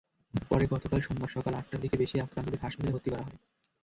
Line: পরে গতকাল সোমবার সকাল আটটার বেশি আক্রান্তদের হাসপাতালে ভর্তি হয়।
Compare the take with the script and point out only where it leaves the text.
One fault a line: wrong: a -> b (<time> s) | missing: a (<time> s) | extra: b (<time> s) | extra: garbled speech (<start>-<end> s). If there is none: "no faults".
extra: দিকে (1.8 s)
extra: করা (3.1 s)